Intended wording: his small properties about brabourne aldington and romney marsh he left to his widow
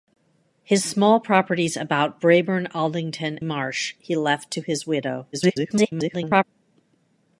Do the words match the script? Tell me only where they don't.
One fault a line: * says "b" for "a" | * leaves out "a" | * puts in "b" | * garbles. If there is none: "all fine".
* leaves out "and romney"
* garbles